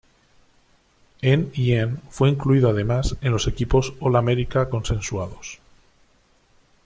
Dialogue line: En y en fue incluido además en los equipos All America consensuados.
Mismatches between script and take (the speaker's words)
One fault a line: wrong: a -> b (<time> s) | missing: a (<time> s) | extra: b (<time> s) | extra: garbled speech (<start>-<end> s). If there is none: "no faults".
no faults